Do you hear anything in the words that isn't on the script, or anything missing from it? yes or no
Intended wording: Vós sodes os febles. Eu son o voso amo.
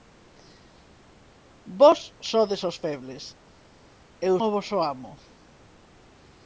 yes